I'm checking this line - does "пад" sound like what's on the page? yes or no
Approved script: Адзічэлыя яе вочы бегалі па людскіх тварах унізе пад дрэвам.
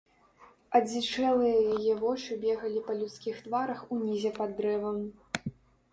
yes